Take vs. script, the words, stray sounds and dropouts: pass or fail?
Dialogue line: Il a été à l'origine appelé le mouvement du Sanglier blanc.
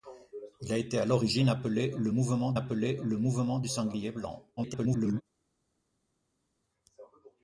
fail